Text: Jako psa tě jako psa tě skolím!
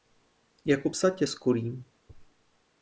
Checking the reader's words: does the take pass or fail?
fail